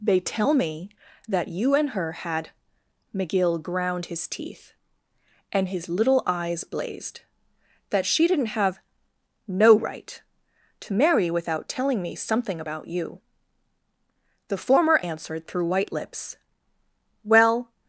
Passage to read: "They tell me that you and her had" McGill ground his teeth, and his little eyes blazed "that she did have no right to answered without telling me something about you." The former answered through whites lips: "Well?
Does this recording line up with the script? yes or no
no